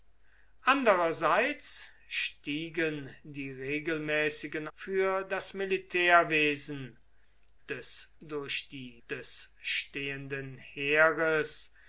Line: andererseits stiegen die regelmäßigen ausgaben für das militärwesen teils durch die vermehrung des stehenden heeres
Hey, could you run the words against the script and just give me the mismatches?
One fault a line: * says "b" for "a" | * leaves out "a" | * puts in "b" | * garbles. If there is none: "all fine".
* leaves out "ausgaben"
* says "des" for "teils"
* leaves out "vermehrung"